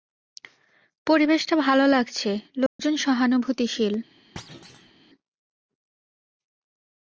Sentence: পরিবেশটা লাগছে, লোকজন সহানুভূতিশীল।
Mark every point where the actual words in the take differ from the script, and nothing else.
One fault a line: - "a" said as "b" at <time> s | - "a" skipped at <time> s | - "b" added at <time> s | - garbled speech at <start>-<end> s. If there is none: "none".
- "ভালো" added at 1.6 s